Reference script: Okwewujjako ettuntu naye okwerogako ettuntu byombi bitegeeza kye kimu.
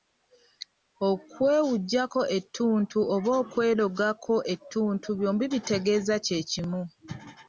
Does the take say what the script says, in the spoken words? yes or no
no